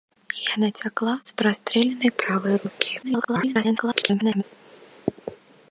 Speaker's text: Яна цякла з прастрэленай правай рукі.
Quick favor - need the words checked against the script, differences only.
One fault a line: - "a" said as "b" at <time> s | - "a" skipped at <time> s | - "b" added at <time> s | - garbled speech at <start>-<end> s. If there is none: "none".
- garbled speech at 3.0-4.4 s